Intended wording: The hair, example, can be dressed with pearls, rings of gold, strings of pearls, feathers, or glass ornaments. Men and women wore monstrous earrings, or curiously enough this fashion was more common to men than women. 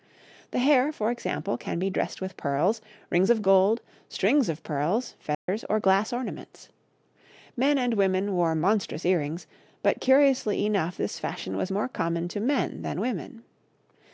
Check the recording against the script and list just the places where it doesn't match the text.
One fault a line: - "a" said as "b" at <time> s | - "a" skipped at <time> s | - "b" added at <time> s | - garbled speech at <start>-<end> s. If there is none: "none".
- "for" added at 0.9 s
- "or" said as "but" at 9.8 s